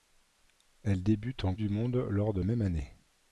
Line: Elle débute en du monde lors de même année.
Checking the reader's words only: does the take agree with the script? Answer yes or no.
yes